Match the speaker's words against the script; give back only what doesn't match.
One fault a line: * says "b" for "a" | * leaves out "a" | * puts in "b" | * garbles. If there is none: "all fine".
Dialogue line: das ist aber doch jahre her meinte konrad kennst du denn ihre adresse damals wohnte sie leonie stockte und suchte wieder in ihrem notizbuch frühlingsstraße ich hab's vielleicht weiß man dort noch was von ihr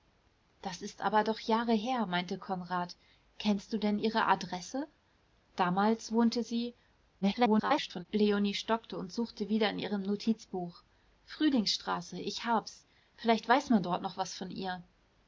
* garbles